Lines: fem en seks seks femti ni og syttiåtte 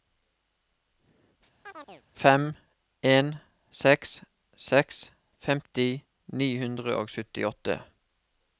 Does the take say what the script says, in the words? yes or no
no